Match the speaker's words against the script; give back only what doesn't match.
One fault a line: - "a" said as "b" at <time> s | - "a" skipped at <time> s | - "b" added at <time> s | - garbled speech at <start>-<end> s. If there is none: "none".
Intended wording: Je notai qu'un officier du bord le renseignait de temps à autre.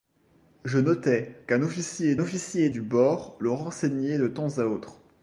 - "officier" added at 2.2 s